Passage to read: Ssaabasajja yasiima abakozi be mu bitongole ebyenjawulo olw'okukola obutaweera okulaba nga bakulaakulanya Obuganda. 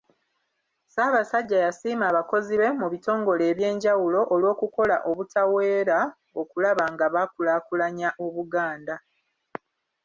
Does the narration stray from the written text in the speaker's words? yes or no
no